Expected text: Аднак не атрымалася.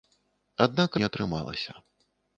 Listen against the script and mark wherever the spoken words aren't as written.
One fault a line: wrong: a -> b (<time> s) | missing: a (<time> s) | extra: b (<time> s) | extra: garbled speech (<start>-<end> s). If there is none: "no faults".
no faults